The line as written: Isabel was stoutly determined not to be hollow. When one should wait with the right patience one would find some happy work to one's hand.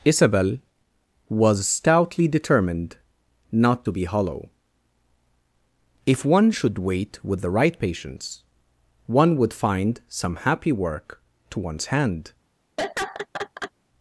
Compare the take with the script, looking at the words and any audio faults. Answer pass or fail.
fail